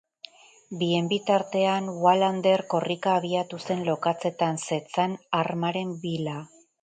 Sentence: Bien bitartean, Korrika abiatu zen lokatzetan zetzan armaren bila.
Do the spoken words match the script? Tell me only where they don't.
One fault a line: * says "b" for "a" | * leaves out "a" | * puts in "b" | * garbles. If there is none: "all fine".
* puts in "Wallander"